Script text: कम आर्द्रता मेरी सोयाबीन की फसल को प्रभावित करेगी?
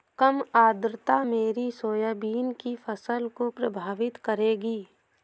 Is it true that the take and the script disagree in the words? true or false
false